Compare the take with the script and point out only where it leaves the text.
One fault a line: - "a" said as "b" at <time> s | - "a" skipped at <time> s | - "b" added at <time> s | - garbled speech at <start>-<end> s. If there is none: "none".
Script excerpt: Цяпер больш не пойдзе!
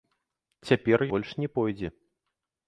none